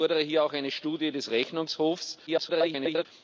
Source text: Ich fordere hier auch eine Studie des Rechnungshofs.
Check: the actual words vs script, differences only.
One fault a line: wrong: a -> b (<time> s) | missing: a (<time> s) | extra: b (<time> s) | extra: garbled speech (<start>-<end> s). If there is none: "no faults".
extra: garbled speech (2.3-3.1 s)